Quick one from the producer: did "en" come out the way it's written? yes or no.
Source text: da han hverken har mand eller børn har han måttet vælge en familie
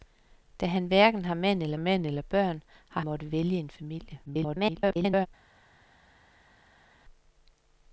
yes